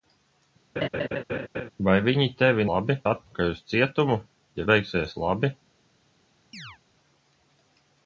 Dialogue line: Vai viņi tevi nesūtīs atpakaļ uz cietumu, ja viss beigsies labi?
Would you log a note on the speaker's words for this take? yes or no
yes